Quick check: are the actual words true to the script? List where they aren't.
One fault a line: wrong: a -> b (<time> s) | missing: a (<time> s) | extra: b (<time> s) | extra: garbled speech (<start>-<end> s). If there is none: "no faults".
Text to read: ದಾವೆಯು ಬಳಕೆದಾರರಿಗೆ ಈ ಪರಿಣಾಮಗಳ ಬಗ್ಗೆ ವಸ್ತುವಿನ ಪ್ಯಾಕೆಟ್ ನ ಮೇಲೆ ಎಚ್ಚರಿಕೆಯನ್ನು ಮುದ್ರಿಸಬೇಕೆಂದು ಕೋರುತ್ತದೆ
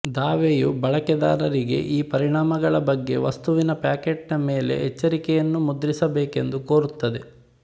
no faults